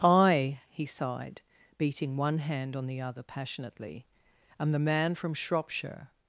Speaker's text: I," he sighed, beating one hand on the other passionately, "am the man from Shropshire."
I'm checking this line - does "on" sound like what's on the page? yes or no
yes